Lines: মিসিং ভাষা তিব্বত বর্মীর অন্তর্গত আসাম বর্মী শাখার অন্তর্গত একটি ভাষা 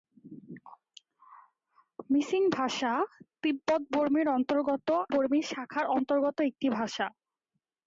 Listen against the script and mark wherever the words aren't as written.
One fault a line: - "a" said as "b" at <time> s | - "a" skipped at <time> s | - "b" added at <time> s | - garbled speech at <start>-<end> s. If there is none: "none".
- "আসাম" skipped at 4.9 s